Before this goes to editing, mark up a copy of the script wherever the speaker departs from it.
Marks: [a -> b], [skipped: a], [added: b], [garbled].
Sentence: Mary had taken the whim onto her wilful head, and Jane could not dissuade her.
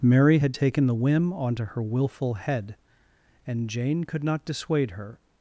Mary had taken the whim onto her wilful head, and Jane could not dissuade her.